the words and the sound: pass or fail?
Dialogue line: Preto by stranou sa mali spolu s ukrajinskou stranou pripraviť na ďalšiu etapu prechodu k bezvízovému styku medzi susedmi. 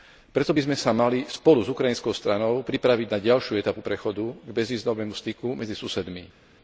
fail